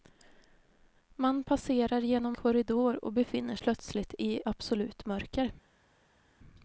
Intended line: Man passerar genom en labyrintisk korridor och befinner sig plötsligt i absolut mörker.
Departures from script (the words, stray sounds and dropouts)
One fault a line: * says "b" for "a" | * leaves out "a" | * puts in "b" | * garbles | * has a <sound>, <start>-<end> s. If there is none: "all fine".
* leaves out "en labyrintisk"
* leaves out "sig"